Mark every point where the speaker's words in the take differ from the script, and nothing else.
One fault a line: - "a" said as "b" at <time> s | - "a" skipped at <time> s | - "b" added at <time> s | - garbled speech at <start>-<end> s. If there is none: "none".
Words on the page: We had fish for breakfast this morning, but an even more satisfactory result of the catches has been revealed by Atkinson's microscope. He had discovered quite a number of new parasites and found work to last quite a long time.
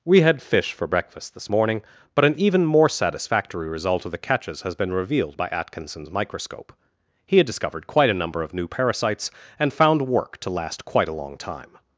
none